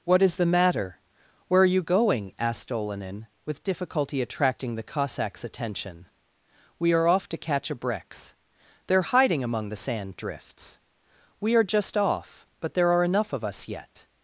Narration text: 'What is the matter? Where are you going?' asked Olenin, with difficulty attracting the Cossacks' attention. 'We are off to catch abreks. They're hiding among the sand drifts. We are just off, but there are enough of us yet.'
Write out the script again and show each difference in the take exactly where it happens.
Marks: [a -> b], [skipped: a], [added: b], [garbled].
'What is the matter? Where are you going?' asked Olenin, with difficulty attracting the Cossacks' attention. 'We are off to catch abreks. They're hiding among the sand drifts. We are just off, but there are enough of us yet.'